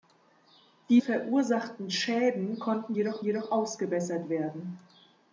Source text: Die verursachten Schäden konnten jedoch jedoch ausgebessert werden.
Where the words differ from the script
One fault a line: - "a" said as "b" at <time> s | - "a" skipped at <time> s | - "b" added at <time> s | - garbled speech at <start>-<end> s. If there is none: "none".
none